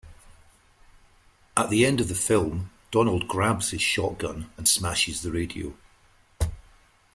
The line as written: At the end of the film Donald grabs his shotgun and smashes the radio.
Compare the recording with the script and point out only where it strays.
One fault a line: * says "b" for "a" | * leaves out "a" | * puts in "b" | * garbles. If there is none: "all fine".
all fine